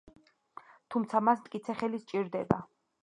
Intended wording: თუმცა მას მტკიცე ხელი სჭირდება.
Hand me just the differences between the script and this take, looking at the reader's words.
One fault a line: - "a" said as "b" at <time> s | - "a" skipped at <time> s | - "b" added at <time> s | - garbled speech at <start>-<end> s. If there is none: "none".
none